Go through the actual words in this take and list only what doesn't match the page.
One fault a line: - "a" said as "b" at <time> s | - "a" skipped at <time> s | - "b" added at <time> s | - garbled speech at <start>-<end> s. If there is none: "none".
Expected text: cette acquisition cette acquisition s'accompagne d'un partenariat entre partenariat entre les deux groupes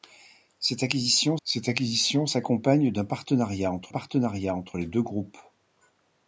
none